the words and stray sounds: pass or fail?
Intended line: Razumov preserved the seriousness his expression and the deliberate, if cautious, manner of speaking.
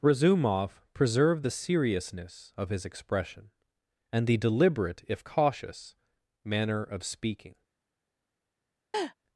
fail